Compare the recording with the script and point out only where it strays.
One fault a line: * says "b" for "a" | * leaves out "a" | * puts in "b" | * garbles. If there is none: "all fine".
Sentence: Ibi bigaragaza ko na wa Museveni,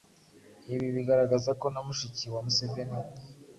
* puts in "mushiki"